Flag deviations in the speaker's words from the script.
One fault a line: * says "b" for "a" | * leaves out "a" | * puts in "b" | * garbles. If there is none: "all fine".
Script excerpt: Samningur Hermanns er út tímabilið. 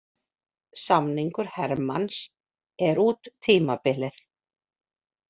all fine